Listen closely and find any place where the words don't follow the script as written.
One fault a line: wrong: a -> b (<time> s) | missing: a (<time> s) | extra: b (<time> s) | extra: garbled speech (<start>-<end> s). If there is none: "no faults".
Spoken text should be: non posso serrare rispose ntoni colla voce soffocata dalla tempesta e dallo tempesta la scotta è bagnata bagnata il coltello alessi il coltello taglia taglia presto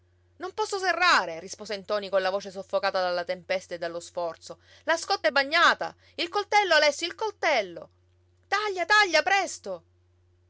wrong: tempesta -> sforzo (4.0 s)
missing: bagnata (6.0 s)